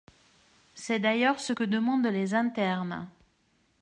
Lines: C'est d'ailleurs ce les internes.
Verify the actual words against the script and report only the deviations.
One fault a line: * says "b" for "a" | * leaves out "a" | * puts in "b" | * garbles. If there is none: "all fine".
* puts in "que demandent"